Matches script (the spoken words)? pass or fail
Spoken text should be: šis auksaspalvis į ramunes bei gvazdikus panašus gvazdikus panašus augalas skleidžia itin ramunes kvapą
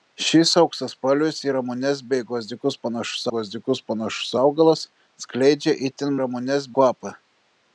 pass